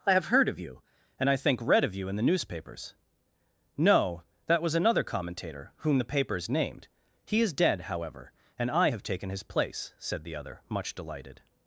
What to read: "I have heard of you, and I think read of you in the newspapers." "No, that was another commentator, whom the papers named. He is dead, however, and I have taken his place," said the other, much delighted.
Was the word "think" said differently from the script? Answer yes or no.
no